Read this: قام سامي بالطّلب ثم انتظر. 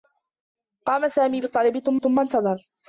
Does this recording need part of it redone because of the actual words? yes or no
yes